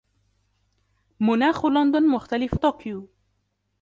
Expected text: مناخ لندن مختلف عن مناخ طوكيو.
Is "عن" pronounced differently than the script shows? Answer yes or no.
yes